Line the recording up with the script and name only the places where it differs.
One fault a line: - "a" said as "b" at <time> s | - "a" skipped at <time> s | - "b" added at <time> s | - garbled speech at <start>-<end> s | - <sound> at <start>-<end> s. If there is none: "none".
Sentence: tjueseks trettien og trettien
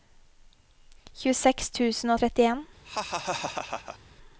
- "trettien" said as "tusen" at 1.8 s
- laugh at 2.8-4.0 s